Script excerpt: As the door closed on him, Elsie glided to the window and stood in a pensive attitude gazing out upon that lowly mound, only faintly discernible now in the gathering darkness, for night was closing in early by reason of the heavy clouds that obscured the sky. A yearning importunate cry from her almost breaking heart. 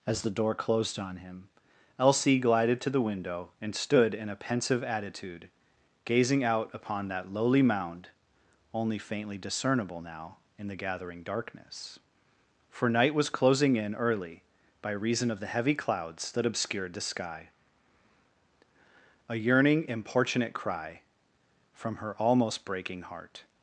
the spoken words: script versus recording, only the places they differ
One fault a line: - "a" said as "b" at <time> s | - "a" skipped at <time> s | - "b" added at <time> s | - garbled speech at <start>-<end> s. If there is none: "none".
none